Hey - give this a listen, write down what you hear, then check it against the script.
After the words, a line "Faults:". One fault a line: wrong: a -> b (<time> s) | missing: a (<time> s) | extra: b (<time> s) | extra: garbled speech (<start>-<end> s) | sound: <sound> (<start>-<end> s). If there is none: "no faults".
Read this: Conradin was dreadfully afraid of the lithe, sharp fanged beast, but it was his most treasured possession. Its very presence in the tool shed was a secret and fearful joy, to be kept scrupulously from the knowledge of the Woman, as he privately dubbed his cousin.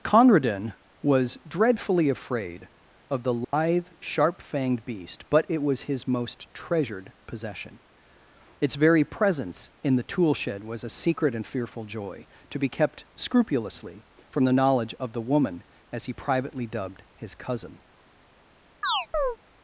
Conradin was dreadfully afraid of the lithe, sharp fanged beast, but it was his most treasured possession. Its very presence in the tool shed was a secret and fearful joy, to be kept scrupulously from the knowledge of the Woman, as he privately dubbed his cousin.
Faults:
sound: dropout (3.4-3.5 s)
sound: chirp (18.8-19.4 s)